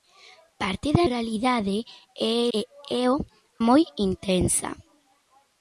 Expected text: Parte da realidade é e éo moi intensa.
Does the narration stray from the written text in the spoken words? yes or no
no